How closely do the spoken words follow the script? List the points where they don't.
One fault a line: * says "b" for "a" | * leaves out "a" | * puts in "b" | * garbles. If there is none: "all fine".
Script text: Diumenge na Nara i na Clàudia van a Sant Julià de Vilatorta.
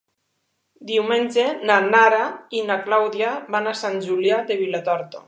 all fine